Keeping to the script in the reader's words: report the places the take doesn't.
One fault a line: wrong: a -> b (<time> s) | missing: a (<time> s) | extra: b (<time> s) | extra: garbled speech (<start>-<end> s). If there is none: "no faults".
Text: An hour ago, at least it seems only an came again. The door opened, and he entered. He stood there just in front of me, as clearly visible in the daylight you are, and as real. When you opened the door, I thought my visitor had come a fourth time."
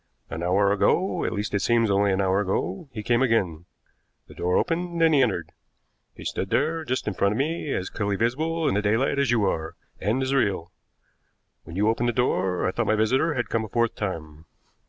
extra: hour ago he (2.2 s)
extra: as (9.2 s)